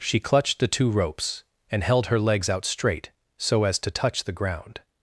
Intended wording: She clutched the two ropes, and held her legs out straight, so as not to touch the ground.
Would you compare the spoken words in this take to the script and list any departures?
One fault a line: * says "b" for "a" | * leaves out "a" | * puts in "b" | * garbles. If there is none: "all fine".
* leaves out "not"